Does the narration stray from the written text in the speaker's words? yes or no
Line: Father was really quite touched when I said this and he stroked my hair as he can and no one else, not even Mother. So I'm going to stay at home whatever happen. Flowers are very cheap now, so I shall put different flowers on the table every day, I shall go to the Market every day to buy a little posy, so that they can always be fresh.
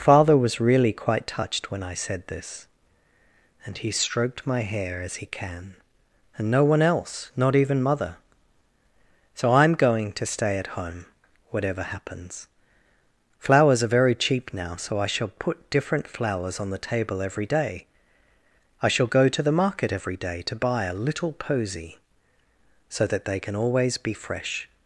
yes